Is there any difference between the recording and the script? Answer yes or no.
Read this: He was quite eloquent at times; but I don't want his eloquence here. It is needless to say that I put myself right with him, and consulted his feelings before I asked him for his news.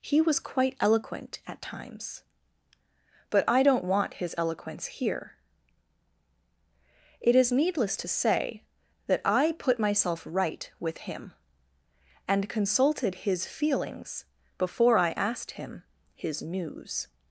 yes